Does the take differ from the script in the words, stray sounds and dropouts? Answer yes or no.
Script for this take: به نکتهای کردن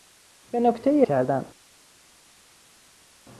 no